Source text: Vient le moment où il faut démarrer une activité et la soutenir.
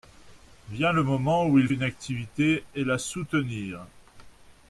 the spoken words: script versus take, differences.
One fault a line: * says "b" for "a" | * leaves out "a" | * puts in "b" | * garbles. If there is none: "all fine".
* leaves out "faut démarrer"